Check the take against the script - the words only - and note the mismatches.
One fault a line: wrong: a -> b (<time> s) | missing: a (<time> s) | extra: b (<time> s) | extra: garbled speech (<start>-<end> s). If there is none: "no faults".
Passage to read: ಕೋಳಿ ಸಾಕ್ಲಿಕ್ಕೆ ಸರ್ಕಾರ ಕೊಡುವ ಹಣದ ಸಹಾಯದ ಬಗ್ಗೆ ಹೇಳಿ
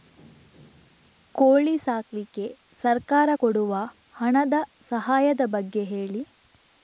no faults